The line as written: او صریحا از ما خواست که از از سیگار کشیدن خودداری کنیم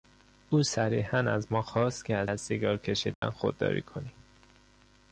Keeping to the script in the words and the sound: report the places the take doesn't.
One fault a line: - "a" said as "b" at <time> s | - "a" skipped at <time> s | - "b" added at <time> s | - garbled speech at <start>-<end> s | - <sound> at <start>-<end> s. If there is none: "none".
- dropout at 3.1-3.2 s